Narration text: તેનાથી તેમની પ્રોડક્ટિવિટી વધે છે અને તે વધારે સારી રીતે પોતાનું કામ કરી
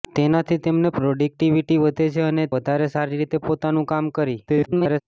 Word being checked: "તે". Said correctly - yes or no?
no